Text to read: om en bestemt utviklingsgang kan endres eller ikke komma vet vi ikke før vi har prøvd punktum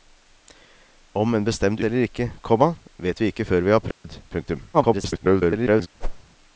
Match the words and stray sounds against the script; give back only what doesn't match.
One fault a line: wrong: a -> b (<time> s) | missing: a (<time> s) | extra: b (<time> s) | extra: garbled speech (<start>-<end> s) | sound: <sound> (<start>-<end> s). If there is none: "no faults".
missing: utviklingsgang kan endres (1.8 s)
sound: dropout (3.9-4.0 s)
extra: garbled speech (4.7-5.9 s)
sound: whoosh (6.0-6.2 s)